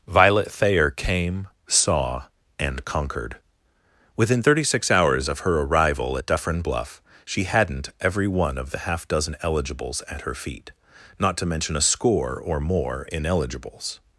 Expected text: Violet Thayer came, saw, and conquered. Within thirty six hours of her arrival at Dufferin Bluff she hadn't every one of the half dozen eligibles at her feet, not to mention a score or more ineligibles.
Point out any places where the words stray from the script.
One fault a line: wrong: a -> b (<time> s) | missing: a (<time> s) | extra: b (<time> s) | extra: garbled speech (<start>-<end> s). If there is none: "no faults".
no faults